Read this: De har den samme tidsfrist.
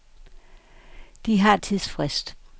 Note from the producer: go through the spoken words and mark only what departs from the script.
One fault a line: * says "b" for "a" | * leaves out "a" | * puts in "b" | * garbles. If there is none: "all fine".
* leaves out "den samme"